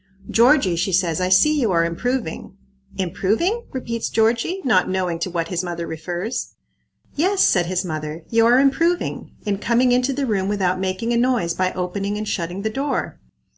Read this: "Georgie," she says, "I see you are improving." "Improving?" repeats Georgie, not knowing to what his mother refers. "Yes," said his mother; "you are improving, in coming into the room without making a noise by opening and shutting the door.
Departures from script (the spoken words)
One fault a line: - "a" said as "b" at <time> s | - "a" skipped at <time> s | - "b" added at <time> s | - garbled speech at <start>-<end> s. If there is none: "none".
none